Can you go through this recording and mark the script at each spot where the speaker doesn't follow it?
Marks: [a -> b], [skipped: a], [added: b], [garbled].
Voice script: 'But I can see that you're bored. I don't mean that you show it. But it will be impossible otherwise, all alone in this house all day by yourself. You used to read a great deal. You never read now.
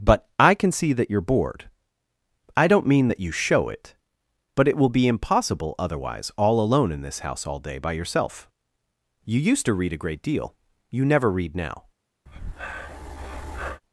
'But I can see that you're bored. I don't mean that you show it. But it will be impossible otherwise, all alone in this house all day by yourself. You used to read a great deal. You never read now.